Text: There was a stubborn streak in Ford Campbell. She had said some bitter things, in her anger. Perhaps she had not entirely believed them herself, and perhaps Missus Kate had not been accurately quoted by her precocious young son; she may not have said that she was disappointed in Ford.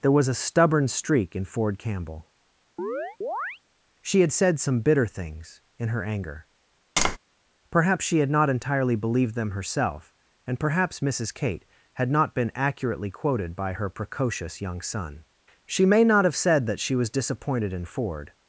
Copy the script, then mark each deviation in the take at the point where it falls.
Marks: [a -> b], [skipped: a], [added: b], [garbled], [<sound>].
There was a stubborn streak in Ford Campbell. [chirp] She had said some bitter things, in her anger. [tap] Perhaps she had not entirely believed them herself, and perhaps Missus Kate had not been accurately quoted by her precocious young son; she may not have said that she was disappointed in Ford.